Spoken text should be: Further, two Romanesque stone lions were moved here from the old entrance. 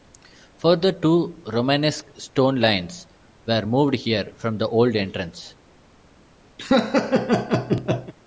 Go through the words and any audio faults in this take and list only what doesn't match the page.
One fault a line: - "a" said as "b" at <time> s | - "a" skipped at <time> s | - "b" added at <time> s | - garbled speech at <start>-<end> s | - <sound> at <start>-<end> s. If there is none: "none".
- laugh at 6.6-8.1 s